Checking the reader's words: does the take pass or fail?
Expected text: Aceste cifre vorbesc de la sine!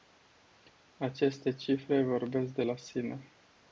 pass